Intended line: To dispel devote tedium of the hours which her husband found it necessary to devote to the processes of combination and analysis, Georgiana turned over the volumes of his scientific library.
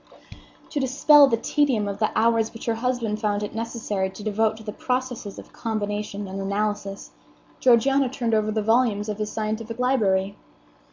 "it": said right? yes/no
yes